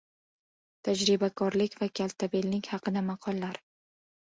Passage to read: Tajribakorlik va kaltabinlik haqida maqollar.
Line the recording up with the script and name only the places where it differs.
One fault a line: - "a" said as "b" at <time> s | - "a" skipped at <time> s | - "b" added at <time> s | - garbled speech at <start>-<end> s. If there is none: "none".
none